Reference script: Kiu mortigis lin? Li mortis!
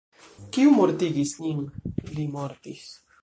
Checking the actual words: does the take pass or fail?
pass